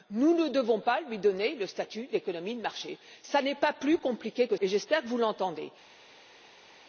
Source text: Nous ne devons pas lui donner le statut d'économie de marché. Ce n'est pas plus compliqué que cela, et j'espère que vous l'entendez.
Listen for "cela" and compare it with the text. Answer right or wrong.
wrong